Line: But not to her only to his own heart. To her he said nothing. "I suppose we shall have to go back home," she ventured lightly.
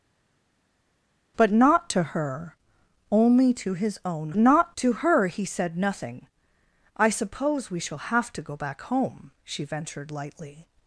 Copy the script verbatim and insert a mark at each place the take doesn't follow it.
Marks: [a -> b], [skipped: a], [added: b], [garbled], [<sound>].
But not to her only to his own [heart. -> not] To her he said nothing. "I suppose we shall have to go back home," she ventured lightly.